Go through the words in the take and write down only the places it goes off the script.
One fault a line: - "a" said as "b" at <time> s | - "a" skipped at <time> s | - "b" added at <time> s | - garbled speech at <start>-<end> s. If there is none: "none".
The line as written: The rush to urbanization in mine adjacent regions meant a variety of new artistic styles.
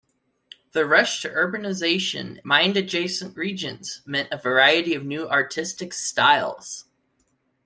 - "in" skipped at 2.4 s